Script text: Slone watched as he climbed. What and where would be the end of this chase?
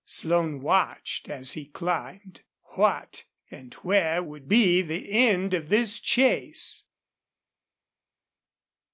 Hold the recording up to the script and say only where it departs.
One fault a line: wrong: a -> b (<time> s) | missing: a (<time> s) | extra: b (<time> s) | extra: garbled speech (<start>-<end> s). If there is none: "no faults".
no faults